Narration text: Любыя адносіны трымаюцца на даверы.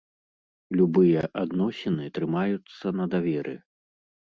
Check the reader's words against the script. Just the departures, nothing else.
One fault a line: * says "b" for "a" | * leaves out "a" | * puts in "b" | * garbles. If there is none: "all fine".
all fine